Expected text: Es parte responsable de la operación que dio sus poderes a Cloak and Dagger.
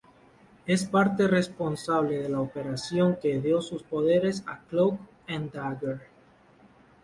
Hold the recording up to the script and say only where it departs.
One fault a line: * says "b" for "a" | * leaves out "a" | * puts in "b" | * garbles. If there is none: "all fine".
all fine